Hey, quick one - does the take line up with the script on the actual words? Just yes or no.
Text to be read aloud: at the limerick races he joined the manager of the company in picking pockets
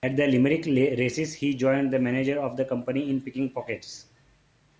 yes